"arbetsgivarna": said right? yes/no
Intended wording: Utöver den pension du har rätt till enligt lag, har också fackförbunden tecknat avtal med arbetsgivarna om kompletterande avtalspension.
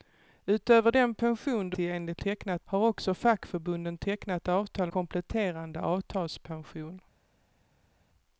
no